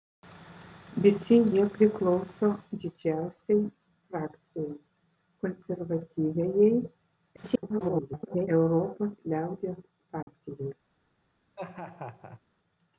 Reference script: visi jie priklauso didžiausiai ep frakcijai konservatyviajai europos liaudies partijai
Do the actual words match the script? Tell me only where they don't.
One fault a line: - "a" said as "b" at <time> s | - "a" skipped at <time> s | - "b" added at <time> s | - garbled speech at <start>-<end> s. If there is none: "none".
- "ep" skipped at 3.6 s
- garbled speech at 7.4-8.5 s